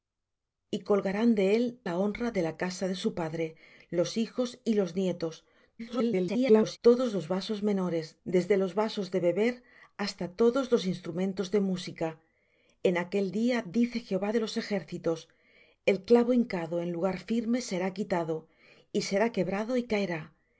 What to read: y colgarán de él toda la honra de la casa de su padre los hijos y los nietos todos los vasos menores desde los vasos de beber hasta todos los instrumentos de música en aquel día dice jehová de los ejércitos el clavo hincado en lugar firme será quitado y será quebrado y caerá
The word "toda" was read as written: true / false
false